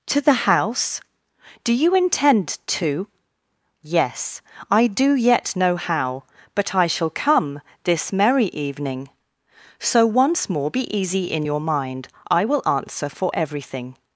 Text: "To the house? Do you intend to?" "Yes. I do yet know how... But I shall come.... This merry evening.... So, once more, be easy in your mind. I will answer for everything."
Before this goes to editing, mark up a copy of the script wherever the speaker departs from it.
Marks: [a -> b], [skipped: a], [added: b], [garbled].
"To the house? Do you intend to?" "Yes. I do yet know how... But I shall come.... This merry evening.... So, once more, be easy in your mind. I will answer for everything."